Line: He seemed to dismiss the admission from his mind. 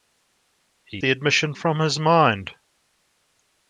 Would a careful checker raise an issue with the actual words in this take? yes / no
yes